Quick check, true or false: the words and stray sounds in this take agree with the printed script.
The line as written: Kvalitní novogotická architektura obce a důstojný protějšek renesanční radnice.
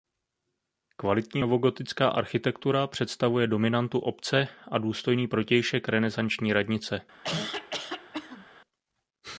false